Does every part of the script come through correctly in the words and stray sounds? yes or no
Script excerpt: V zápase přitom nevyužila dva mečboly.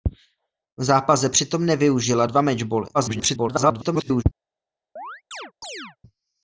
no